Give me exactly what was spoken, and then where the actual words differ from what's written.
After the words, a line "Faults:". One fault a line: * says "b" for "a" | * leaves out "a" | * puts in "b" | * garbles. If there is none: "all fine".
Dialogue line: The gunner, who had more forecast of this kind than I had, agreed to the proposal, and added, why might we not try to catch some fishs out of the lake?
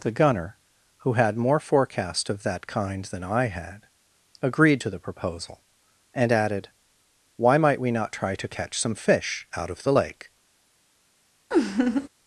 The gunner, who had more forecast of that kind than I had, agreed to the proposal, and added, why might we not try to catch some fish out of the lake?
Faults:
* says "that" for "this"
* says "fish" for "fishs"